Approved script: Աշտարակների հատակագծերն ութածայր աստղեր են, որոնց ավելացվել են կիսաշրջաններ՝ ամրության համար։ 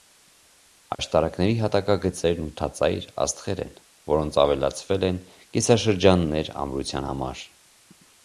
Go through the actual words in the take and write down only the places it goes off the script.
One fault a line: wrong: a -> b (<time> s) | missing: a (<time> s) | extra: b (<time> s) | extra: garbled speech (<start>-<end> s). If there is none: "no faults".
no faults